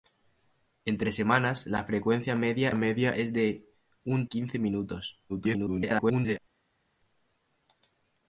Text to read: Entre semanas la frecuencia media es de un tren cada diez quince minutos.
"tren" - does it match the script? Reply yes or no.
no